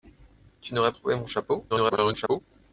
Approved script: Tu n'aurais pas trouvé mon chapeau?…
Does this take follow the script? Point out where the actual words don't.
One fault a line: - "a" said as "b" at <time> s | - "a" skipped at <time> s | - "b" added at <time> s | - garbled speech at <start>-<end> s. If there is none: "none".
- "pas" skipped at 0.9 s
- garbled speech at 1.7-2.4 s